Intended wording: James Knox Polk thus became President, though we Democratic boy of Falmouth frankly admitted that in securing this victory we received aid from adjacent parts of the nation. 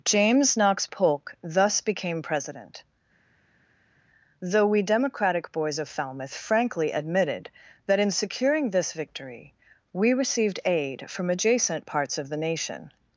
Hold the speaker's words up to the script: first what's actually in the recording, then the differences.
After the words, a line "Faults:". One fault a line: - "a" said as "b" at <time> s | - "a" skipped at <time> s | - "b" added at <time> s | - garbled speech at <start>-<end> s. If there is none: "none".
James Knox Polk thus became President, though we Democratic boys of Falmouth frankly admitted that in securing this victory we received aid from adjacent parts of the nation.
Faults:
- "boy" said as "boys" at 5.5 s